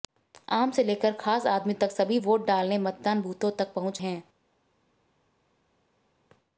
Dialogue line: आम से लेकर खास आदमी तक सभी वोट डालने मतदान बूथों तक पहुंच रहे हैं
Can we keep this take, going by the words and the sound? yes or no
no